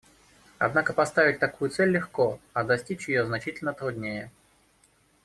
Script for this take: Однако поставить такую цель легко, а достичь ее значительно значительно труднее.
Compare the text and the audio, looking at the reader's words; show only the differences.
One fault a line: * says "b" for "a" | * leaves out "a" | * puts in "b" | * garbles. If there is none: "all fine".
* leaves out "значительно"